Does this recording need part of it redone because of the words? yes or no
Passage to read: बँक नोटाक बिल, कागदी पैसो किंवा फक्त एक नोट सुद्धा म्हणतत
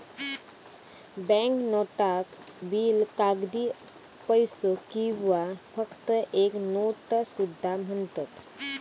no